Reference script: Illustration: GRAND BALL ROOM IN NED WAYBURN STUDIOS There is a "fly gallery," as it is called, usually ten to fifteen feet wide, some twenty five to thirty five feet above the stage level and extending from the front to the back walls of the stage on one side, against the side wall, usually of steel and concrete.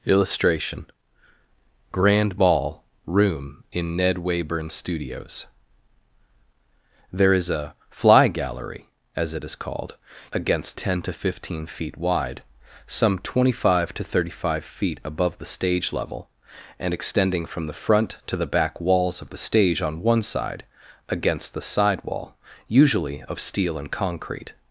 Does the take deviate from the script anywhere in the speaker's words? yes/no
yes